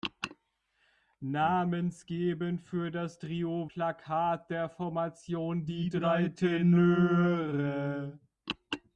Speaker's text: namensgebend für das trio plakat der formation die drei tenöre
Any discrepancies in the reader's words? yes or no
no